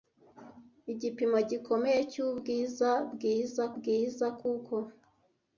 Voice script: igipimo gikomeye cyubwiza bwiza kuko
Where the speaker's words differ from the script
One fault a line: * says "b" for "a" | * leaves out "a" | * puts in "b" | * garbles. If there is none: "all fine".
* puts in "bwiza"